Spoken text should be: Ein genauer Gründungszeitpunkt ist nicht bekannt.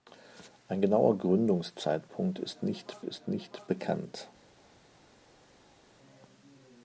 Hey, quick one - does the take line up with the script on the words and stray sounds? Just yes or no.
no